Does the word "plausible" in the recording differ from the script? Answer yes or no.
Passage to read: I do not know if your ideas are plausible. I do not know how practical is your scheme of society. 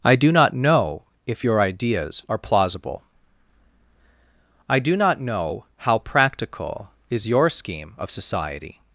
no